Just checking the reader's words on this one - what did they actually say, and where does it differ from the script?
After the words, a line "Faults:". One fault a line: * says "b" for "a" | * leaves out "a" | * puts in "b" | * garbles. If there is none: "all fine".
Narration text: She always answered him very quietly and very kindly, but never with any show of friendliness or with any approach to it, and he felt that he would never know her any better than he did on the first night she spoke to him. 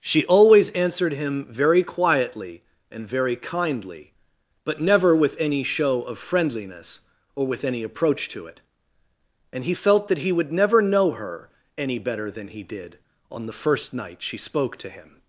She always answered him very quietly and very kindly, but never with any show of friendliness or with any approach to it, and he felt that he would never know her any better than he did on the first night she spoke to him.
Faults:
all fine